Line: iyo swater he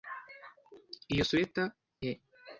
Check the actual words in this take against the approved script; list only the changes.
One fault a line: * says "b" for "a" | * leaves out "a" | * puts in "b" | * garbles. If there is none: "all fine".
all fine